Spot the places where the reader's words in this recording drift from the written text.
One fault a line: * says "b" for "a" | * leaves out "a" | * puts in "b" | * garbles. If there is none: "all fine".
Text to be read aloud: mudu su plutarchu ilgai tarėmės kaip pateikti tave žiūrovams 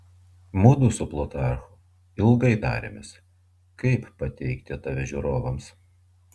all fine